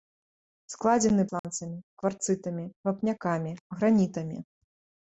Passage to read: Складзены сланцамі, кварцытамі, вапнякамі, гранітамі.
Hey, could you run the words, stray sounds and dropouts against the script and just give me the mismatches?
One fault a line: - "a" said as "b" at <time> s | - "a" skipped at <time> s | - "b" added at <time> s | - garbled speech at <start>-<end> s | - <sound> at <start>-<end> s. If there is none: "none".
- dropout at 1.4-1.4 s